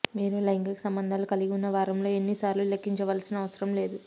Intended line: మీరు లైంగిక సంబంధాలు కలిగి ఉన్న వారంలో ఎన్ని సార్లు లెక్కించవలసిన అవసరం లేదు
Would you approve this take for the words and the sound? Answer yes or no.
yes